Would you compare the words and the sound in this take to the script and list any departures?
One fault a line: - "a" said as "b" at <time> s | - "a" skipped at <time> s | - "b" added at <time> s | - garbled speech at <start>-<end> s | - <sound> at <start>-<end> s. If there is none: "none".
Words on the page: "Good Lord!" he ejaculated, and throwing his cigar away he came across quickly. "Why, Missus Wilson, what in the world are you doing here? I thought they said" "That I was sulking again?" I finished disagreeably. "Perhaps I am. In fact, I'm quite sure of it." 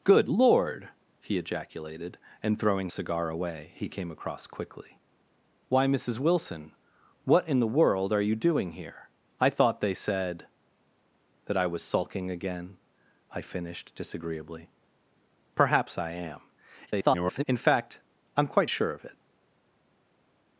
- "his" skipped at 2.9 s
- garbled speech at 16.9-17.4 s